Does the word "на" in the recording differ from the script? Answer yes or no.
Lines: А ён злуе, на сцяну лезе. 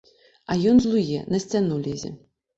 no